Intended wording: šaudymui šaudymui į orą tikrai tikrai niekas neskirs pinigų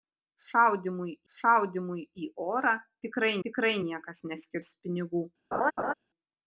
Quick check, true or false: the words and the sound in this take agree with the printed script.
false